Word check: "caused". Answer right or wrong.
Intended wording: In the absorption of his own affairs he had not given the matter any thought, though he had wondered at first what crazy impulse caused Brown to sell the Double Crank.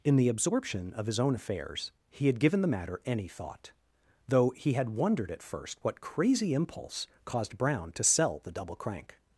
right